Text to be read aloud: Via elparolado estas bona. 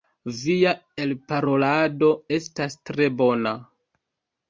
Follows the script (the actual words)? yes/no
no